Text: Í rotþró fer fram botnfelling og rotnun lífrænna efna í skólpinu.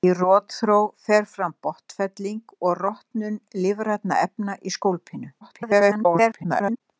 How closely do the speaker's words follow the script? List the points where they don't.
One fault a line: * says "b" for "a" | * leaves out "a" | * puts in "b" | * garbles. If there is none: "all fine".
* garbles